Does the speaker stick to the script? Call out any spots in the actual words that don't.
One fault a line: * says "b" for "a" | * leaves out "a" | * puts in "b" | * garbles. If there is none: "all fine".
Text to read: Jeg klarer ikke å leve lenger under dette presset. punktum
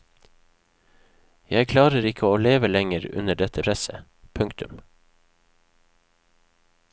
all fine